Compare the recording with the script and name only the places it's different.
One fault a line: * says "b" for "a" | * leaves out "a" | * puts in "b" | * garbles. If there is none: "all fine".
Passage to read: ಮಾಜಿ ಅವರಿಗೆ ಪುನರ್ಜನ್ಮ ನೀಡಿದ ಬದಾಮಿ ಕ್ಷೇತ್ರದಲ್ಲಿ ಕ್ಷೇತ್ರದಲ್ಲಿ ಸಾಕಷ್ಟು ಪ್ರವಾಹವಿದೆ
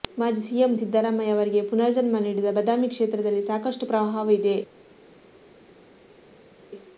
* puts in "ಸಿಎಂ ಸಿದ್ದರಾಮಯ್ಯ"
* leaves out "ಕ್ಷೇತ್ರದಲ್ಲಿ"